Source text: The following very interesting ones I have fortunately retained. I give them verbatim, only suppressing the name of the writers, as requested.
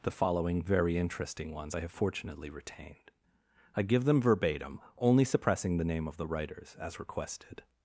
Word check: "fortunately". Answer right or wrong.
right